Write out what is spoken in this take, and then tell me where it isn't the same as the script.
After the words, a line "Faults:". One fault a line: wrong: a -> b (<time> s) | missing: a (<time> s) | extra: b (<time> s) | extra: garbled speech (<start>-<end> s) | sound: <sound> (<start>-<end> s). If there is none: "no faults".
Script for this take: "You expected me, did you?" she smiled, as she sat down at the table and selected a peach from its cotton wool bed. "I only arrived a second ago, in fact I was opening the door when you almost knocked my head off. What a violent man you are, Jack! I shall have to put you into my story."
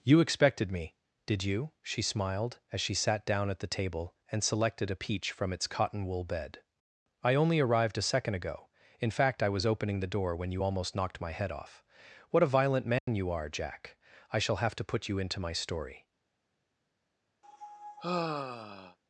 "You expected me, did you?" she smiled, as she sat down at the table and selected a peach from its cotton wool bed. "I only arrived a second ago, in fact I was opening the door when you almost knocked my head off. What a violent man you are, Jack! I shall have to put you into my story."
Faults:
sound: dropout (13.0-13.1 s)
sound: sigh (17.4-19.0 s)